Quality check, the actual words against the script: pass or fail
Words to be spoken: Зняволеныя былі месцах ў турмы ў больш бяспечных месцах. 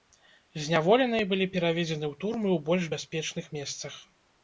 fail